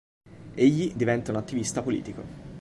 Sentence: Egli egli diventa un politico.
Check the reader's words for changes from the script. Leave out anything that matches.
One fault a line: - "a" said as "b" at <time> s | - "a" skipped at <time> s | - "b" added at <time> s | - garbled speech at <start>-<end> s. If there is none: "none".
- "egli" skipped at 0.9 s
- "attivista" added at 1.4 s